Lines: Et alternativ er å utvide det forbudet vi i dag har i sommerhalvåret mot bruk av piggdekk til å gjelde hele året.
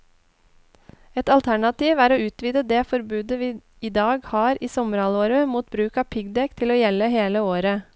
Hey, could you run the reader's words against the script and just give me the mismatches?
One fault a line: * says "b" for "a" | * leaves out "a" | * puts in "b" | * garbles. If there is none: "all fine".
all fine